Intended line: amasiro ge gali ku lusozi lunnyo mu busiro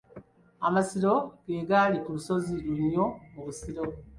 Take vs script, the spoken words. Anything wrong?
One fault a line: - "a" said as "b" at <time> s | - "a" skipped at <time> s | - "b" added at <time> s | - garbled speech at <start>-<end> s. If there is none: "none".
none